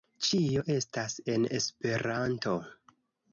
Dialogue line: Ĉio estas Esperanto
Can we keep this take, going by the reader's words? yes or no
no